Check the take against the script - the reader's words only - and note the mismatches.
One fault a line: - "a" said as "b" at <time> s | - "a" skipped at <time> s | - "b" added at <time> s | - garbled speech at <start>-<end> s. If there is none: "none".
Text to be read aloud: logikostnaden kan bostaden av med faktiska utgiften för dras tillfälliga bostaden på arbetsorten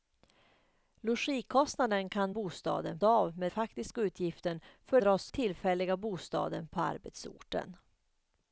none